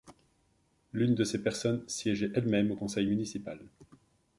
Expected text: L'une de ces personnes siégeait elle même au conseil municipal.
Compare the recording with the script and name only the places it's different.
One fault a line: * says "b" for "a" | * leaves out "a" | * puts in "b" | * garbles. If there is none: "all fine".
all fine